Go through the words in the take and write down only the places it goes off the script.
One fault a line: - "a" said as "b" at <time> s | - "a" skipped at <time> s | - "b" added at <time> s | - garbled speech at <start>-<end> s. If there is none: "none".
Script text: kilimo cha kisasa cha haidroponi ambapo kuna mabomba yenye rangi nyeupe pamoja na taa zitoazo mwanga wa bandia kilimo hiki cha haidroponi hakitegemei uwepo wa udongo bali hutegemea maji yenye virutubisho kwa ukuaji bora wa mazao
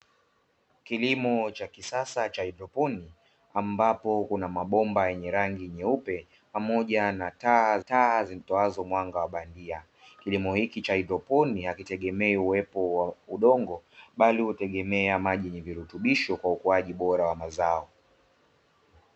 - "taa" added at 7.8 s